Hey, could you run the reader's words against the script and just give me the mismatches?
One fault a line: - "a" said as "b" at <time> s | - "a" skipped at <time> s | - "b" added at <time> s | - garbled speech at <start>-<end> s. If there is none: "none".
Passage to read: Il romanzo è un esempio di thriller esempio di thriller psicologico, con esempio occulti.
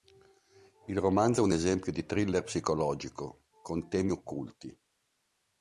- "esempio di thriller" skipped at 2.4 s
- "esempio" said as "temi" at 3.9 s